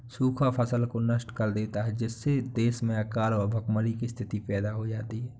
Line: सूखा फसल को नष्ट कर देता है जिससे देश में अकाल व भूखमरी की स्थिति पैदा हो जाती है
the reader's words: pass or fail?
pass